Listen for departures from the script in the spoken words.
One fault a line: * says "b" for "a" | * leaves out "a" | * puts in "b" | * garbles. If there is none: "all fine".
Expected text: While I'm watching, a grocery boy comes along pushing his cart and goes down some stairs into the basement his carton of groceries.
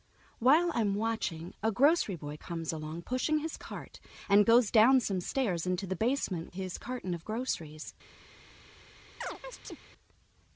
all fine